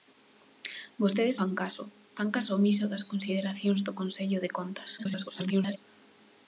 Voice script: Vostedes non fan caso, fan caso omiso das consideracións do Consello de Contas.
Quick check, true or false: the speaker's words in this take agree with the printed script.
false